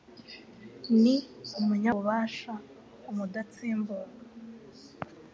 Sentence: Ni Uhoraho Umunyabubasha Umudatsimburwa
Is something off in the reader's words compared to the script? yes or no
yes